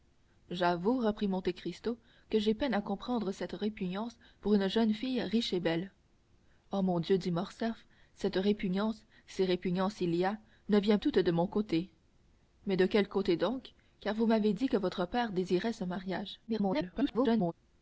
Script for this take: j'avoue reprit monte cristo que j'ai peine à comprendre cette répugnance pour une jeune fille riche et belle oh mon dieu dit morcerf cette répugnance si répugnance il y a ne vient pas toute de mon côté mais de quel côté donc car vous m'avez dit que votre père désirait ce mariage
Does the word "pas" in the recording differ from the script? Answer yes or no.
yes